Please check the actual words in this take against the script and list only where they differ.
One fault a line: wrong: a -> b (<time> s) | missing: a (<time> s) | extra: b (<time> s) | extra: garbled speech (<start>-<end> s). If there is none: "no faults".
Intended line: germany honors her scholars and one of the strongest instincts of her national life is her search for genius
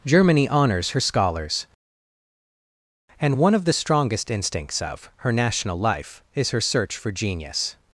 no faults